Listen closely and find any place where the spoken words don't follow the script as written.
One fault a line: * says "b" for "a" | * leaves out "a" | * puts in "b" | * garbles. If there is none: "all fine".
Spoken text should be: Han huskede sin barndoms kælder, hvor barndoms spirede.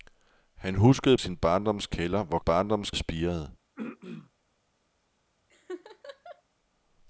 all fine